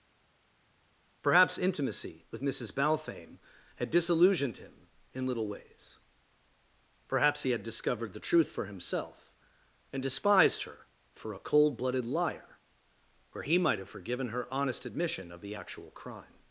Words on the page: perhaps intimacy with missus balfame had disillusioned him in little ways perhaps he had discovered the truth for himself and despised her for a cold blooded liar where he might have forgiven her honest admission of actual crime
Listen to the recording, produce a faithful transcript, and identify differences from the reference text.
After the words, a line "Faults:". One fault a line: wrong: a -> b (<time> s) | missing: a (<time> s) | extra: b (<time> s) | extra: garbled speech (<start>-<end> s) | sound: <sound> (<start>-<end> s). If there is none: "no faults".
perhaps intimacy with missus balfame had disillusioned him in little ways perhaps he had discovered the truth for himself and despised her for a cold blooded liar where he might have forgiven her honest admission of the actual crime
Faults:
extra: the (15.4 s)